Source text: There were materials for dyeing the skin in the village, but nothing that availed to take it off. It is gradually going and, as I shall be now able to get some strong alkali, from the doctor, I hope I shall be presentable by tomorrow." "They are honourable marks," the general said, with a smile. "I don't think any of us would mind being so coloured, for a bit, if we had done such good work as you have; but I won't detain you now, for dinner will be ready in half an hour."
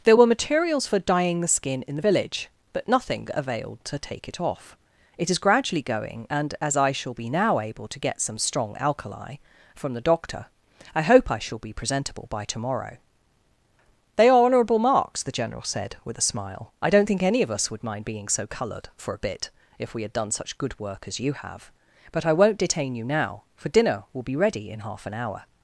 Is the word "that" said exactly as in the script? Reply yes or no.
no